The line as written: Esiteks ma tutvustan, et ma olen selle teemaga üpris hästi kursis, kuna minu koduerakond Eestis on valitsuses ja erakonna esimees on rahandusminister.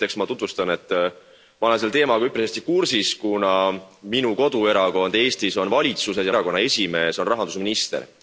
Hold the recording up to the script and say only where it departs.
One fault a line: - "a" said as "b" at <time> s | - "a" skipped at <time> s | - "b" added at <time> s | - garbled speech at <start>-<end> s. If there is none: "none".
none